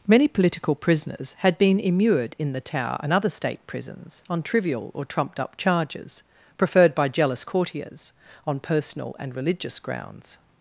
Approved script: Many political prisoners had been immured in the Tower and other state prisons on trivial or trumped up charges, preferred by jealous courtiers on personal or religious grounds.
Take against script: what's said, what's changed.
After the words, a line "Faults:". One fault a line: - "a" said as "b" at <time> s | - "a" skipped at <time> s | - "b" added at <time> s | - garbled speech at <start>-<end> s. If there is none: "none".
Many political prisoners had been immured in the Tower and other state prisons on trivial or trumped up charges, preferred by jealous courtiers on personal and religious grounds.
Faults:
- "or" said as "and" at 9.2 s